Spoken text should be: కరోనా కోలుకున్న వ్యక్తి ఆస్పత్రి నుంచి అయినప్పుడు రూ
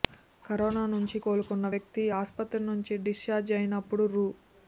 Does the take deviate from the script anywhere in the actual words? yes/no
yes